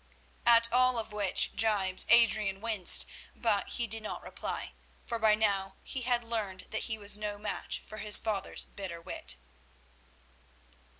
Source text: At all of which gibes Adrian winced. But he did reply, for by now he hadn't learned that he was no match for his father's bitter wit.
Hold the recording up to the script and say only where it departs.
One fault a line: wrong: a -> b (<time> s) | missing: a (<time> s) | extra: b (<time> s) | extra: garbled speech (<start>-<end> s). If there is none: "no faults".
extra: not (4.0 s)
wrong: hadn't -> had (6.0 s)